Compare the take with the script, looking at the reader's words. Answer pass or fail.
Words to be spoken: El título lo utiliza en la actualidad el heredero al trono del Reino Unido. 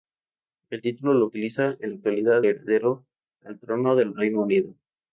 fail